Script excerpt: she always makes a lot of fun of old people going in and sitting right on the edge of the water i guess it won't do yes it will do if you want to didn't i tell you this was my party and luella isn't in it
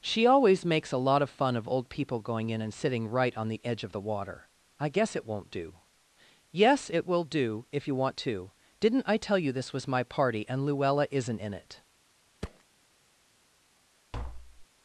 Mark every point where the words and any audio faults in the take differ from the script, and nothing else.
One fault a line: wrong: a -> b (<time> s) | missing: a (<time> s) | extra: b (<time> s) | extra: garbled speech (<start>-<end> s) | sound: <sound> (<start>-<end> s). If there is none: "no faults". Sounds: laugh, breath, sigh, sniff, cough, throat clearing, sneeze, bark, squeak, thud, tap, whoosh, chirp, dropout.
sound: thud (12.4-12.6 s)
sound: tap (14.1-14.7 s)